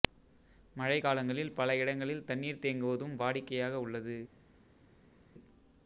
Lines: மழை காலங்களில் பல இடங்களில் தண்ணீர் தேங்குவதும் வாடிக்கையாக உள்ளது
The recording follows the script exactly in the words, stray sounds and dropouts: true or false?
true